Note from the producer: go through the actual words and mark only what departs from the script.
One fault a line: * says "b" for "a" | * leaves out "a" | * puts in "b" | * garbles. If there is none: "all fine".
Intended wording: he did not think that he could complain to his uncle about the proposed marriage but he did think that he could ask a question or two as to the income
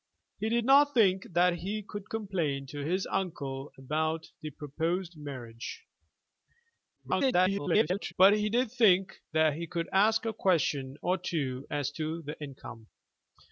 * garbles